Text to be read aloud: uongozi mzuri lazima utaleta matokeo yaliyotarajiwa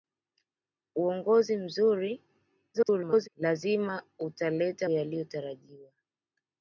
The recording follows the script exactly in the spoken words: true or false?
false